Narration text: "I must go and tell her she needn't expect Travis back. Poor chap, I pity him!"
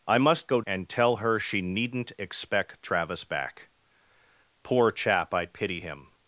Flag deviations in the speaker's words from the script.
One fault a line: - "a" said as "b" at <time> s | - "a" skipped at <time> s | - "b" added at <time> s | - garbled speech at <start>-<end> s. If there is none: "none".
none